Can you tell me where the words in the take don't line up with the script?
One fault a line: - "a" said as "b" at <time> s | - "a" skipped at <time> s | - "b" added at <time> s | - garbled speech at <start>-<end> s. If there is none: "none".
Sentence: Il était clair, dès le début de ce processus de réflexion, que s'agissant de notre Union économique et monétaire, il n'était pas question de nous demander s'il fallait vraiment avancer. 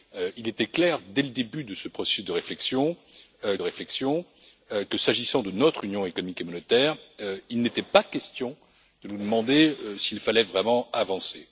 - "réflexion" added at 3.6 s